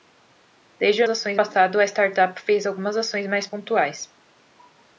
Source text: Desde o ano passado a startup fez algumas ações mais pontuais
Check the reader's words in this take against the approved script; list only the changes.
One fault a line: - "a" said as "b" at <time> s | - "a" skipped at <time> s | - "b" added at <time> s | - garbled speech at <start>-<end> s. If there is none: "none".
- "ano" said as "ações" at 1.1 s